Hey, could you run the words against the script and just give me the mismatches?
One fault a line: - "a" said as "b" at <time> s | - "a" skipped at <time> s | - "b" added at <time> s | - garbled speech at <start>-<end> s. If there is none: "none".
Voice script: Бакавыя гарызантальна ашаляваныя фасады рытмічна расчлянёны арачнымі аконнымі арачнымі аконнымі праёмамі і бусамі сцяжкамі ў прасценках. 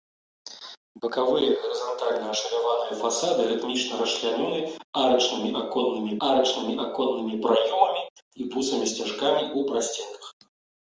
none